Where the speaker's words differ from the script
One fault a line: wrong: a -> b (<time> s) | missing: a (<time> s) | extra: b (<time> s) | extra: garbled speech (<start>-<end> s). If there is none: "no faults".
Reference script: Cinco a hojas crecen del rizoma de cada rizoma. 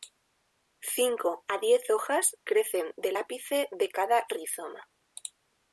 extra: diez (1.6 s)
wrong: rizoma -> ápice (3.1 s)